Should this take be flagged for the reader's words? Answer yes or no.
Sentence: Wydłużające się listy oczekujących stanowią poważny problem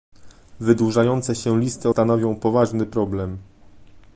yes